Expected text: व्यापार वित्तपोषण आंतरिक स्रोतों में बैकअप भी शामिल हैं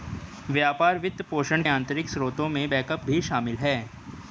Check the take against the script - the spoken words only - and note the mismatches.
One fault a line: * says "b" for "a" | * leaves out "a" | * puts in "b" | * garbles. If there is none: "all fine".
all fine